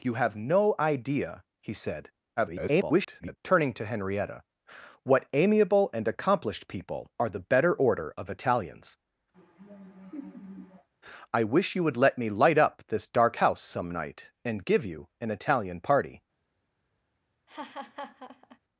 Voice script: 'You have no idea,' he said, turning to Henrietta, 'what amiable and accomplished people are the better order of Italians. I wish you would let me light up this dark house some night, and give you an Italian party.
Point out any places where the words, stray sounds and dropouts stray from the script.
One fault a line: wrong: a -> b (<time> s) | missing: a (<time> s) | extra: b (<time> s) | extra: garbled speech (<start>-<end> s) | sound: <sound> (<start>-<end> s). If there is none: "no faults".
extra: garbled speech (2.4-3.4 s)
sound: laugh (9.3-10.9 s)
sound: laugh (17.5-18.6 s)